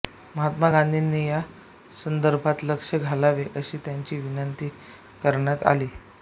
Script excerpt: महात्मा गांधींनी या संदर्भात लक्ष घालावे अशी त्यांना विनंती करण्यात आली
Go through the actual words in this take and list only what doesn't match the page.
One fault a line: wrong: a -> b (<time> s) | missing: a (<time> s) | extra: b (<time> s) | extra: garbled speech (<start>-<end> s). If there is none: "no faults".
no faults